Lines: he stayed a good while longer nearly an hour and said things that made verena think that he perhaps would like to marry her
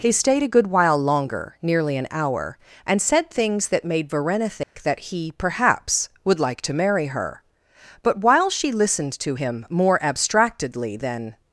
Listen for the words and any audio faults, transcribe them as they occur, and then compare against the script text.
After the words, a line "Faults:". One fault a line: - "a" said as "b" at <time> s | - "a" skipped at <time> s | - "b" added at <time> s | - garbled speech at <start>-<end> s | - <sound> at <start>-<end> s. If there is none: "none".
he stayed a good while longer nearly an hour and said things that made verena think that he perhaps would like to marry her but while she listened to him more abstractedly than
Faults:
- dropout at 4.6-4.8 s
- "but while she listened to him more abstractedly than" added at 8.0 s